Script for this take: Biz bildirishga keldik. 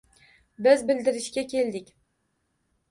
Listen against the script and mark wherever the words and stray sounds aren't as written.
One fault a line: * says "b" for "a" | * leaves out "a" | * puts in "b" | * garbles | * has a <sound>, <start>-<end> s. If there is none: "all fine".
all fine